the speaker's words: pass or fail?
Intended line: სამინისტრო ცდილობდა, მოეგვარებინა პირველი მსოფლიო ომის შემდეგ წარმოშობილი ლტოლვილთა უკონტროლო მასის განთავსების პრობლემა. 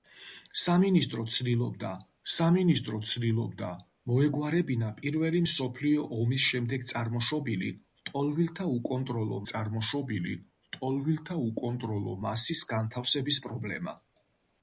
fail